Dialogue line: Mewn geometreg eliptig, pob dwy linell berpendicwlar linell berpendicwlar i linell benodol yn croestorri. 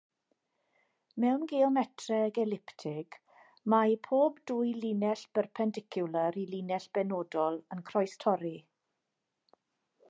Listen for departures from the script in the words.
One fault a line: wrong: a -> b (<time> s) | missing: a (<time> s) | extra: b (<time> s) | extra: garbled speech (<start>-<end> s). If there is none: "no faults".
extra: mae (3.7 s)
missing: linell berpendicwlar (6.4 s)